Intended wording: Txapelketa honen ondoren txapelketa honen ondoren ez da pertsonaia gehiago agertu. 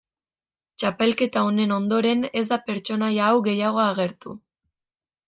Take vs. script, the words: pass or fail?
fail